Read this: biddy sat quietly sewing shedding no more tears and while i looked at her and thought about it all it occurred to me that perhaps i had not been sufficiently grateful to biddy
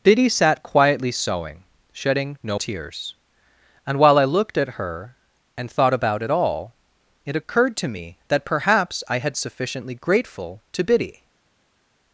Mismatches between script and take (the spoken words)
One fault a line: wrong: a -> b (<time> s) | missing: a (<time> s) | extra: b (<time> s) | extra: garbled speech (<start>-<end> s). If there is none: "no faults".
missing: more (2.6 s)
missing: not been (9.3 s)